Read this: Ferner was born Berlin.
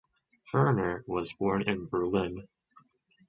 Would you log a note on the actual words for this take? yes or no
yes